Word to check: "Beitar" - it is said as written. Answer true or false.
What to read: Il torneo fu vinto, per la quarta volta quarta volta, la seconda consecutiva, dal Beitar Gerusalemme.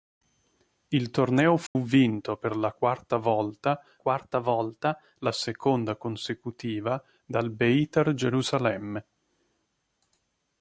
true